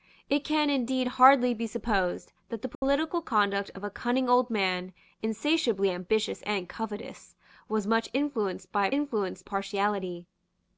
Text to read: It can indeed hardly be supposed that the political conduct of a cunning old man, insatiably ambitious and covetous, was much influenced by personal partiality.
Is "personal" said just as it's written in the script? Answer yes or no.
no